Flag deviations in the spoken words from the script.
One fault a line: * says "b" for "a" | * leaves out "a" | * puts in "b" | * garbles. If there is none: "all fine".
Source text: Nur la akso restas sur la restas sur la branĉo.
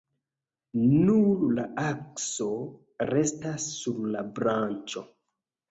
* leaves out "restas sur la"